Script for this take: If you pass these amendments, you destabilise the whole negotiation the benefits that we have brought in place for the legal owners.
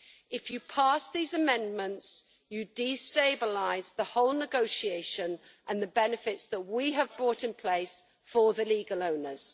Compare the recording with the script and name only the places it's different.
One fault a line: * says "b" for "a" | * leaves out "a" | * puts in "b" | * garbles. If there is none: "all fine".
* puts in "and"